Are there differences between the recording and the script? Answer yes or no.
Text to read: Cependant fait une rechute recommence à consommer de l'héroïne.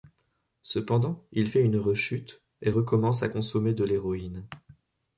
yes